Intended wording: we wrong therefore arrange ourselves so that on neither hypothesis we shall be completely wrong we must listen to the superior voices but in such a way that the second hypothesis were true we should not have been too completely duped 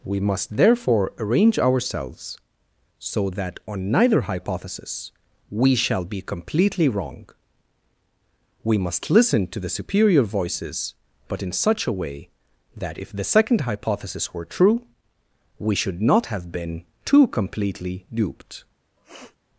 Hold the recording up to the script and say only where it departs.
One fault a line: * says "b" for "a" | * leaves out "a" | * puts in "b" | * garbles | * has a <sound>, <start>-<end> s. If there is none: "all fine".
* says "must" for "wrong"
* puts in "if"
* has a sniff, 19.0-19.4 s